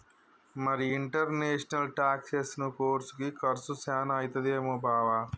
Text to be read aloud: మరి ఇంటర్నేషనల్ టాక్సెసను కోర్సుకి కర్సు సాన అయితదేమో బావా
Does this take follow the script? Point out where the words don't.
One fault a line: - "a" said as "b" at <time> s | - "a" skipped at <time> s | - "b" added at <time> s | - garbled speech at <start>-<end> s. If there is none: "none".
none